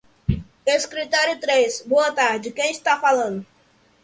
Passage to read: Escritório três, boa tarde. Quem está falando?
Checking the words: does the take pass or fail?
pass